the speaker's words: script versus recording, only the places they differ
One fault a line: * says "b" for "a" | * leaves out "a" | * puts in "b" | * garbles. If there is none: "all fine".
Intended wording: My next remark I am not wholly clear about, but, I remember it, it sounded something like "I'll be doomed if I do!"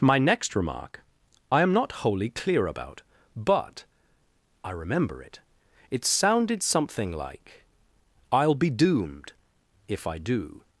all fine